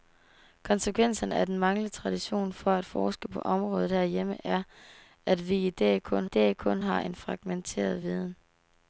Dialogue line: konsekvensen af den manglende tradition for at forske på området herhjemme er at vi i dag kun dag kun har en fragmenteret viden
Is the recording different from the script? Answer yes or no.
no